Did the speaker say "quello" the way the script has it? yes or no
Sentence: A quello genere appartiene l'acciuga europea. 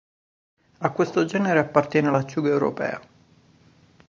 no